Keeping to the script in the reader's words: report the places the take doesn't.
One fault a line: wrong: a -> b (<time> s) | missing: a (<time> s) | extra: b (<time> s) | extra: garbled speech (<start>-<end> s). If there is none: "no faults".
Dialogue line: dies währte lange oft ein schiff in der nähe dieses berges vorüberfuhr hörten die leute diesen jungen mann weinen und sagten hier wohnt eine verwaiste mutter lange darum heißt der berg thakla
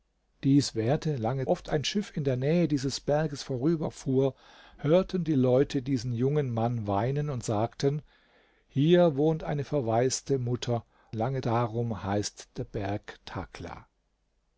no faults